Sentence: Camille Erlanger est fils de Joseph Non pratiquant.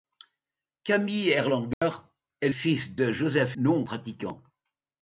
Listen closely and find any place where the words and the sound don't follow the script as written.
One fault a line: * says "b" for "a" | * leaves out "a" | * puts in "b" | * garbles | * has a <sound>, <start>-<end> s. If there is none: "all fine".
* has a dropout, 1.7-1.8 s